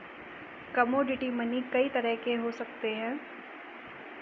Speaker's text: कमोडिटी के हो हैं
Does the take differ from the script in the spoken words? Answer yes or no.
yes